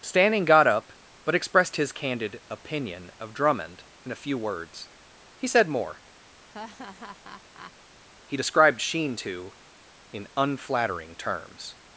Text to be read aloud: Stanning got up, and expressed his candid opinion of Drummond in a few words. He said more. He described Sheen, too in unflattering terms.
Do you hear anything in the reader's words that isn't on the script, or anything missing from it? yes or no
yes